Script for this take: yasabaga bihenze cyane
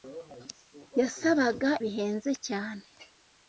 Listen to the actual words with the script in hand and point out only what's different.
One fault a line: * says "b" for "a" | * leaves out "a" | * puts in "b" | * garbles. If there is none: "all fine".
all fine